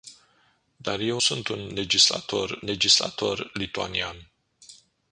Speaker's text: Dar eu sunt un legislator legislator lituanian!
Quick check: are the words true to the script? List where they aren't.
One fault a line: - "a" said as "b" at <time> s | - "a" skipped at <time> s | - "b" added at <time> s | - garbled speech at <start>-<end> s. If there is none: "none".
none